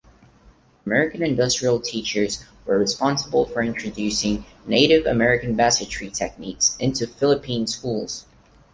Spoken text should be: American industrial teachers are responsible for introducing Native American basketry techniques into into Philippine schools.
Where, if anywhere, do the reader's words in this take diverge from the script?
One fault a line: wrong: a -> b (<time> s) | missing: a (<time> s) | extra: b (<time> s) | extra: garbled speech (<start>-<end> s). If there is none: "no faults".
wrong: are -> were (2.6 s)
missing: into (7.0 s)